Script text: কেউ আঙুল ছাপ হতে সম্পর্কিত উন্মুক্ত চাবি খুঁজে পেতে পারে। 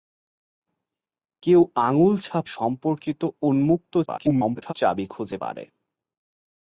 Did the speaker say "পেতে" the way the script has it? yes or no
no